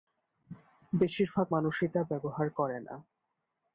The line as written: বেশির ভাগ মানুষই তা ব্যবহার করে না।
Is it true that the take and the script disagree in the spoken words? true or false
false